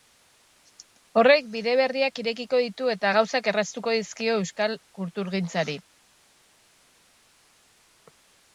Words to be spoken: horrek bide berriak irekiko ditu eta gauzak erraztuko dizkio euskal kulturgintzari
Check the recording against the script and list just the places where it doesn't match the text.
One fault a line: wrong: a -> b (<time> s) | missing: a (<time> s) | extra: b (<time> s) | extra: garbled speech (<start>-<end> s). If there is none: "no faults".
no faults